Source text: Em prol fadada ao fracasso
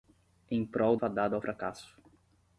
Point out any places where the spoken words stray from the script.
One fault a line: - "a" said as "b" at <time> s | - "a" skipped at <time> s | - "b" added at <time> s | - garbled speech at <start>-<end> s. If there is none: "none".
none